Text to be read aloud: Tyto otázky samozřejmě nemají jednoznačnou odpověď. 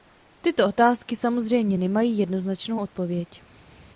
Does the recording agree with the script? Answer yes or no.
yes